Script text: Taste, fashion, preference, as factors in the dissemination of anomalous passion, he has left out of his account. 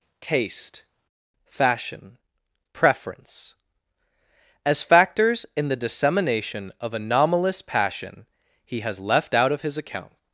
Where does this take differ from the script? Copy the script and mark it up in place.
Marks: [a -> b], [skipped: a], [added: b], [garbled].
Taste, fashion, preference, as factors in the dissemination of anomalous passion, he has left out of his account.